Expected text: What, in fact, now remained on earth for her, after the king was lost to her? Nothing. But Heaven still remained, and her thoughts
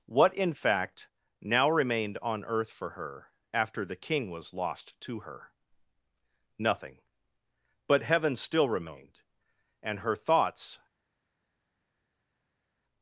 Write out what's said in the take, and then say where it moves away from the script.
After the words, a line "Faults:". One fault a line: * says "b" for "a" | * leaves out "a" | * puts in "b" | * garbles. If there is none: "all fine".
What, in fact, now remained on earth for her, after the king was lost to her? Nothing. But Heaven still remained, and her thoughts
Faults:
all fine